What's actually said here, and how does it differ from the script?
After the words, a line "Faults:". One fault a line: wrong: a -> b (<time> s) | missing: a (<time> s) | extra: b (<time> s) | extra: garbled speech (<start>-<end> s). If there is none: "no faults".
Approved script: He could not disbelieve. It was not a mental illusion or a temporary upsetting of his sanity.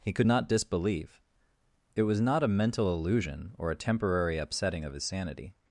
He could not disbelieve. It was not a mental illusion or a temporary upsetting of his sanity.
Faults:
no faults